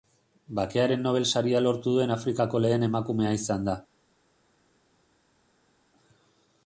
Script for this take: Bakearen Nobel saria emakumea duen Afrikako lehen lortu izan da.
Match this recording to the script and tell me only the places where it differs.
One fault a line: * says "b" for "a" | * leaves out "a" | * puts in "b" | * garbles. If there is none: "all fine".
* says "lortu" for "emakumea"
* says "emakumea" for "lortu"